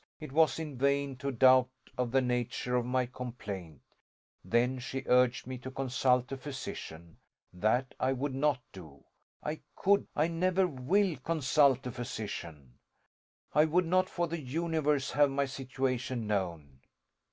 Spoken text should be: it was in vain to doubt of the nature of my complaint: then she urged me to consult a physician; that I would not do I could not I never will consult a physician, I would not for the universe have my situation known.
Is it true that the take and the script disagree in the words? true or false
true